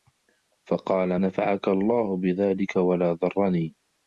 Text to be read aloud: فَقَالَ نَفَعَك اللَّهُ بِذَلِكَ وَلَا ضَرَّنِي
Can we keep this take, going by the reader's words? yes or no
yes